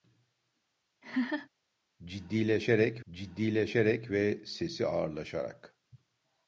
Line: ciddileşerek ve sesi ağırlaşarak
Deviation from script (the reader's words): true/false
true